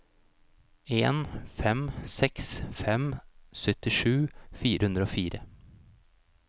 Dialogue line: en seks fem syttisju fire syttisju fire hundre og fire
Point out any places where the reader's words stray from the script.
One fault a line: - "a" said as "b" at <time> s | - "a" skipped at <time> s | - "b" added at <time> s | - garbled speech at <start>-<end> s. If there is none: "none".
- "fem" added at 1.6 s
- "syttisju fire" skipped at 4.9 s